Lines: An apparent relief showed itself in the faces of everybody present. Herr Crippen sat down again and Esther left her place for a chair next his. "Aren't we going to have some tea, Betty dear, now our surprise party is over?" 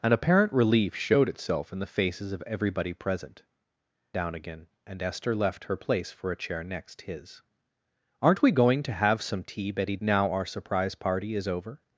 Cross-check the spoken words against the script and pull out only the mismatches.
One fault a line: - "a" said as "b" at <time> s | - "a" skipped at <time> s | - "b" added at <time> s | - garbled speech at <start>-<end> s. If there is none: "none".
- "Herr Crippen sat" skipped at 3.4 s
- "dear" skipped at 10.0 s